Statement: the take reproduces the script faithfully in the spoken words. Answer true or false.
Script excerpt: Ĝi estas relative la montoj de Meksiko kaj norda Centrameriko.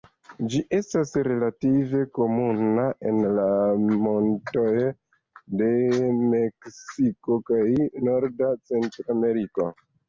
false